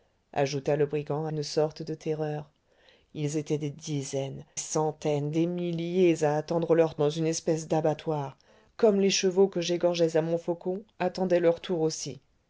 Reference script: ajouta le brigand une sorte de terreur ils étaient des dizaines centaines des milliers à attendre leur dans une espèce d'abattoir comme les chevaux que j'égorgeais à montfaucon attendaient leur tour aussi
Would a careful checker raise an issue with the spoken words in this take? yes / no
no